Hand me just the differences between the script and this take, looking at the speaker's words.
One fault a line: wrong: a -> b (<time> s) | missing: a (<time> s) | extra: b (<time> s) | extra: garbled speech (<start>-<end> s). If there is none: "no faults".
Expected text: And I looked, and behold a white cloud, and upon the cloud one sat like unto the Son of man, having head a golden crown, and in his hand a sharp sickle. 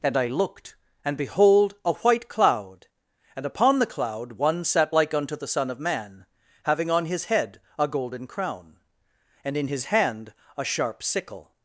extra: on his (6.9 s)